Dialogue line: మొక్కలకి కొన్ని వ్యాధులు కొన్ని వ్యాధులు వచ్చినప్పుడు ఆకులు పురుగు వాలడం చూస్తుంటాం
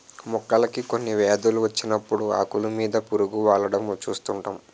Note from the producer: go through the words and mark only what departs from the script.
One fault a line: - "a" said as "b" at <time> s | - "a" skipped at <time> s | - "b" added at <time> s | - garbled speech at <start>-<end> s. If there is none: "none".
- "కొన్ని వ్యాధులు" skipped at 1.6 s
- "మీద" added at 2.8 s